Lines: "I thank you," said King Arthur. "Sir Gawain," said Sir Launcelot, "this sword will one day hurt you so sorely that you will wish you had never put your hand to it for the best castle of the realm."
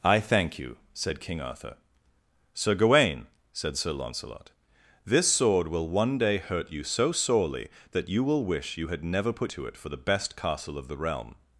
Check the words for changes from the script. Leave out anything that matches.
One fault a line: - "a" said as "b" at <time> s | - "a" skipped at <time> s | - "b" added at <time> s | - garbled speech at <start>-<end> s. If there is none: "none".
- "your hand" skipped at 9.5 s